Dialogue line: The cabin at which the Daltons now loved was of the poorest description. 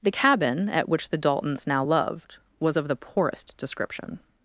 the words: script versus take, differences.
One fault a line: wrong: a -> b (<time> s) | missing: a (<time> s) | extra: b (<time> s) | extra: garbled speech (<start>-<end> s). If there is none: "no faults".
no faults